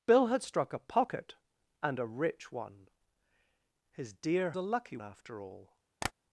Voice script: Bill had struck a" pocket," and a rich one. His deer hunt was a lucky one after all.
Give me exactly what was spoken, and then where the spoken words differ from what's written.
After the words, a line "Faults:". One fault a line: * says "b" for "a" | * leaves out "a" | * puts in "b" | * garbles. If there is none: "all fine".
Bill had struck a" pocket," and a rich one. His deer a lucky after all.
Faults:
* leaves out "hunt was"
* leaves out "one"